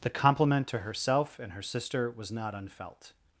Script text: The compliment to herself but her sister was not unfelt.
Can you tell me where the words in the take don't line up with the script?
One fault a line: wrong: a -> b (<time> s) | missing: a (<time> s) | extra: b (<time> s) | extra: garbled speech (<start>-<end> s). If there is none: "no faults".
wrong: but -> and (1.4 s)